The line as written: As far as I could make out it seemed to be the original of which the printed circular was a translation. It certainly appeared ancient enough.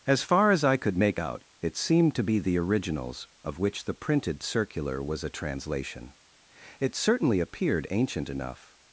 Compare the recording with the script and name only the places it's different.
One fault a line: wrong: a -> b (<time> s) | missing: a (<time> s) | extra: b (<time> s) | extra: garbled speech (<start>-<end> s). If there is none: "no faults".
wrong: original -> originals (2.6 s)